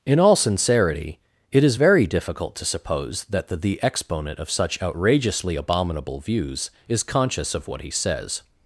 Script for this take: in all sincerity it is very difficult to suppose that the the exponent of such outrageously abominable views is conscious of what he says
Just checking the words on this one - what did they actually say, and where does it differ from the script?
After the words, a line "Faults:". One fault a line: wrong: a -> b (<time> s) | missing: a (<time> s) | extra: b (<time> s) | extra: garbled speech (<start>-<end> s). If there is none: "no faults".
in all sincerity it is very difficult to suppose that the the exponent of such outrageously abominable views is conscious of what he says
Faults:
no faults